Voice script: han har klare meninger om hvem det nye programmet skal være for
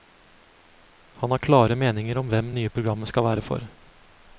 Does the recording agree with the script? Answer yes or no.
no